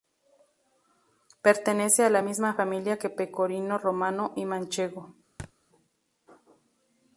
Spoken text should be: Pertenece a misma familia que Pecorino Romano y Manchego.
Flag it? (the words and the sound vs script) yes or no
yes